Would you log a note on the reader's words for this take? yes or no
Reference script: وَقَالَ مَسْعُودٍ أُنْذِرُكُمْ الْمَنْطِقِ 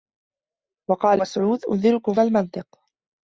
no